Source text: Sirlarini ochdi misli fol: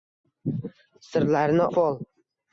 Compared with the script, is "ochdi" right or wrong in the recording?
wrong